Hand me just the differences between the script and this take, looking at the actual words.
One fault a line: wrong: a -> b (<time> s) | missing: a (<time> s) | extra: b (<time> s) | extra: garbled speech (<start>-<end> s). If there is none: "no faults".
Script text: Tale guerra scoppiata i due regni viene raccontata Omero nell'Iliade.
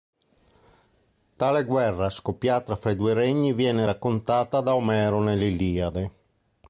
extra: fra (2.8 s)
extra: da (4.6 s)